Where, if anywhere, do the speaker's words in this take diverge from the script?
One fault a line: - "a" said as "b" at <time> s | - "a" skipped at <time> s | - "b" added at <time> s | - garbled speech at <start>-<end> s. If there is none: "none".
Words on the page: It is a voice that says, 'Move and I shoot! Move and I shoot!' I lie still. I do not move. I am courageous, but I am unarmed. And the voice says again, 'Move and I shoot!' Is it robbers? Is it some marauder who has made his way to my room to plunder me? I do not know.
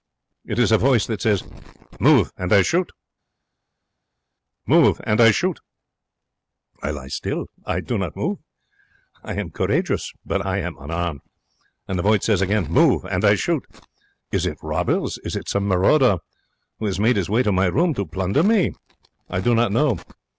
none